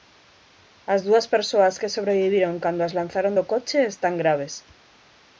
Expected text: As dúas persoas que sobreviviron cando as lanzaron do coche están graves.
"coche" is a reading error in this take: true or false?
false